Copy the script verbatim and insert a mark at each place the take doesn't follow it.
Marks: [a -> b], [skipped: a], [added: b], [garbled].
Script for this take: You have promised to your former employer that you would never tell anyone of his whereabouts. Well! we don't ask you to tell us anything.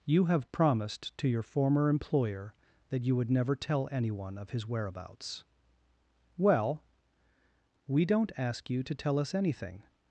You have promised to your former employer that you would never tell anyone of his whereabouts. Well! we don't ask you to tell us anything.